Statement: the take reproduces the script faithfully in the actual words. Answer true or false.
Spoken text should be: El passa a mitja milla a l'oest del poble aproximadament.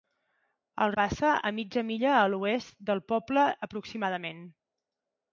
true